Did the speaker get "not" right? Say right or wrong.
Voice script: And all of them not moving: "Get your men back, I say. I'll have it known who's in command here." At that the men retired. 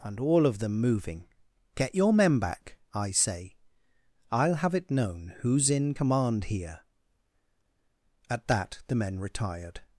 wrong